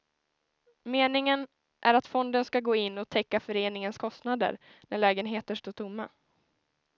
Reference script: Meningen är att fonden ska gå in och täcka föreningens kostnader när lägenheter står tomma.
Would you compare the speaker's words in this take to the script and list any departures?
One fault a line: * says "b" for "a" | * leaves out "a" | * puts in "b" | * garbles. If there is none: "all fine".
all fine